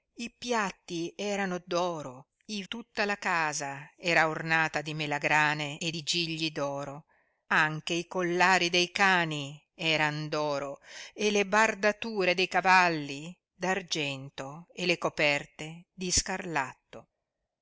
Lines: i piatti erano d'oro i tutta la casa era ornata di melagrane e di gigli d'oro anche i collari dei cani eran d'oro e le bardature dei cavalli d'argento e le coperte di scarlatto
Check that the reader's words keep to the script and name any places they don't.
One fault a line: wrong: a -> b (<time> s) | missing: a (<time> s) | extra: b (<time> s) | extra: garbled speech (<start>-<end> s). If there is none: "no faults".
no faults